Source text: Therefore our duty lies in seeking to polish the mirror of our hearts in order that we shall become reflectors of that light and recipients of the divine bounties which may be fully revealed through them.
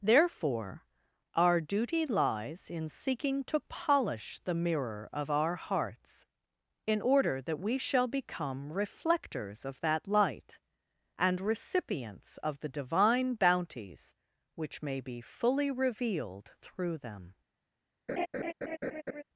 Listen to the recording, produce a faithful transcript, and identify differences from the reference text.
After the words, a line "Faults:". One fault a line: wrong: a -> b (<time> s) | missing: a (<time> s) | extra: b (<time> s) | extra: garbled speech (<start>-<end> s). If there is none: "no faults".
Therefore our duty lies in seeking to polish the mirror of our hearts in order that we shall become reflectors of that light and recipients of the divine bounties which may be fully revealed through them.
Faults:
no faults